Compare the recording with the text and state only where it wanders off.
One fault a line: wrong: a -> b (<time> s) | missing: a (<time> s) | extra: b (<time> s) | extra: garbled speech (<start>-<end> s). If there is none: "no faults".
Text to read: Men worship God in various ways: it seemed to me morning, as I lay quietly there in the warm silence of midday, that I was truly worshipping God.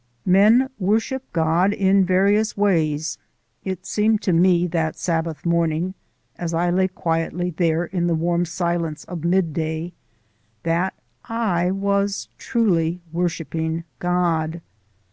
extra: that Sabbath (4.7 s)